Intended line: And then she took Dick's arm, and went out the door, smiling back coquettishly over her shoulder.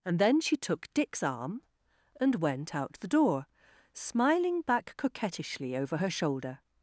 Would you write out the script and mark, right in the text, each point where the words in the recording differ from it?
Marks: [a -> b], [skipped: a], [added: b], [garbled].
And then she took Dick's arm, and went out the door, smiling back coquettishly over her shoulder.